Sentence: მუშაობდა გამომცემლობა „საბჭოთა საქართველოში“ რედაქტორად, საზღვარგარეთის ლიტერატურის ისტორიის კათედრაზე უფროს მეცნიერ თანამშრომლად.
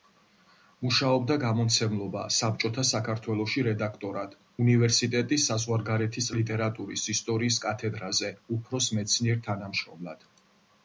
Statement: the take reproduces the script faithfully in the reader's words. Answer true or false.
false